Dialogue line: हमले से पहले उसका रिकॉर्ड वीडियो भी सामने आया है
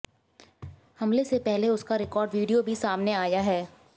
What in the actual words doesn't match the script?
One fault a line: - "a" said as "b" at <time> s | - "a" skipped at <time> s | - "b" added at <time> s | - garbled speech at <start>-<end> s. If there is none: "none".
none